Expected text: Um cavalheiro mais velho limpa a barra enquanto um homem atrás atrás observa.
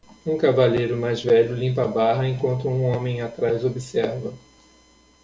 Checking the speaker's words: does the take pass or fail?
fail